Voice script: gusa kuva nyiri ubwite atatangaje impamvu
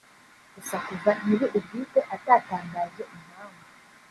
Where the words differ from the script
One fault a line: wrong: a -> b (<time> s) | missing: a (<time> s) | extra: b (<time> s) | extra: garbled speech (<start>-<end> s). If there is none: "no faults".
no faults